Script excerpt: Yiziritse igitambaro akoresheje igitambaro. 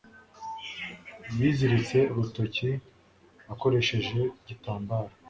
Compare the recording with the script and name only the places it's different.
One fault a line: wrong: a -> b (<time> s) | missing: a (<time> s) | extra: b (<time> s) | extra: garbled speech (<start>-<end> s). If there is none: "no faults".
wrong: igitambaro -> urutoki (2.1 s)